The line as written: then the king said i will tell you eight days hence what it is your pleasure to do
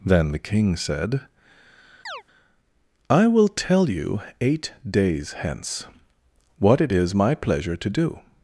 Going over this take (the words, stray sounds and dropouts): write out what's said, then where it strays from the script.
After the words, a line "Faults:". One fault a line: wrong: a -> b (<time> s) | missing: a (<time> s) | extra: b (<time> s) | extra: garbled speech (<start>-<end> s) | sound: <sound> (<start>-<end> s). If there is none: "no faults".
then the king said i will tell you eight days hence what it is my pleasure to do
Faults:
sound: chirp (2.1-2.2 s)
wrong: your -> my (7.1 s)